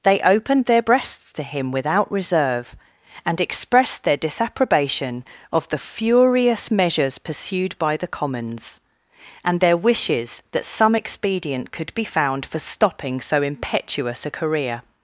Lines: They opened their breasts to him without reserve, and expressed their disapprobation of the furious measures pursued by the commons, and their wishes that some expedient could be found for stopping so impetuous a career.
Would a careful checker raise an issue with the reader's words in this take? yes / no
no